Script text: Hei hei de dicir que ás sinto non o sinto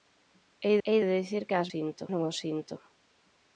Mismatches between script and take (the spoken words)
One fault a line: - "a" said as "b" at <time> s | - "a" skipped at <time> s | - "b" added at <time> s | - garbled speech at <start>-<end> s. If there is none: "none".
none